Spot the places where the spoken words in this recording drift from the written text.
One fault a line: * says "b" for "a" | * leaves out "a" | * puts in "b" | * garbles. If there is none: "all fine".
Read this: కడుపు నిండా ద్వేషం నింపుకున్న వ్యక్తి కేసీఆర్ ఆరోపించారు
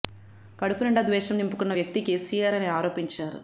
* puts in "అని"